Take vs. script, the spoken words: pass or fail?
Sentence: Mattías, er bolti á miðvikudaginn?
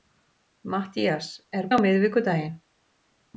fail